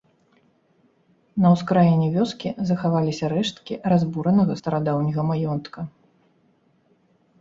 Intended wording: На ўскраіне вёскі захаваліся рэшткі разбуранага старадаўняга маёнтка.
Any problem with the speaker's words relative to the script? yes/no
no